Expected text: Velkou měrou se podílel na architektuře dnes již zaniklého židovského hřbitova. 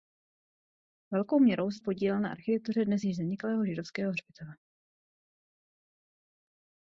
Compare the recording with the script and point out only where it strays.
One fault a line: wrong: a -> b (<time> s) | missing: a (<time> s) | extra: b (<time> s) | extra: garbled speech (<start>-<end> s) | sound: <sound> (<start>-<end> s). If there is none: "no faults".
no faults